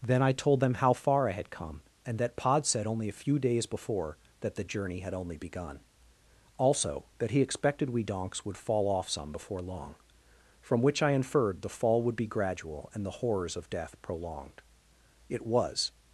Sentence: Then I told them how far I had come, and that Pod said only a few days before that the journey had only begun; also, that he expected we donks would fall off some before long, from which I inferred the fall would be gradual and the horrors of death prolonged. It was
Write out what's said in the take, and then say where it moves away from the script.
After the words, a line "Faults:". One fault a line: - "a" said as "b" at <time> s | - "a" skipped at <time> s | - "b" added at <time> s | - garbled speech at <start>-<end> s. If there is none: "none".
Then I told them how far I had come, and that Pod said only a few days before that the journey had only begun; also, that he expected we donks would fall off some before long, from which I inferred the fall would be gradual and the horrors of death prolonged. It was
Faults:
none